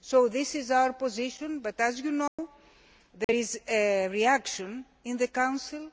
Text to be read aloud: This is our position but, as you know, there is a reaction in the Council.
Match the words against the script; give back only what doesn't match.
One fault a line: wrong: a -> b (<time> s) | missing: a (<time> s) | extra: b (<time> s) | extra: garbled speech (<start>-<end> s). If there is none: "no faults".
no faults